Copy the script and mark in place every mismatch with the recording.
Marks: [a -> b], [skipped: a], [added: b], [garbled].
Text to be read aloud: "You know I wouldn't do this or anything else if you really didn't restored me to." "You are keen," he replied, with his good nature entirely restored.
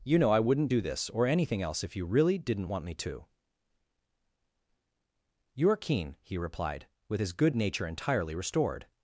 "You know I wouldn't do this or anything else if you really didn't [restored -> want] me to." "You are keen," he replied, with his good nature entirely restored.